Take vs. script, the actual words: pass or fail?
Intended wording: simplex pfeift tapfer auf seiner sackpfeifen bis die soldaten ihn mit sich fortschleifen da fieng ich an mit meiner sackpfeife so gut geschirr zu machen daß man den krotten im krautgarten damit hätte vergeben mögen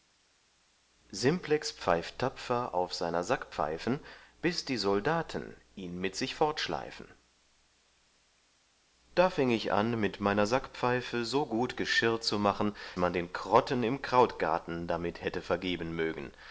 fail